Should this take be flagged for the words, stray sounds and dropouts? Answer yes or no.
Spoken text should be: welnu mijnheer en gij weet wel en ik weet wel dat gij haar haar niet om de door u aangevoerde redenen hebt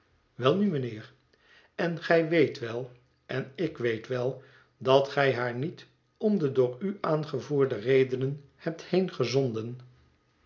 yes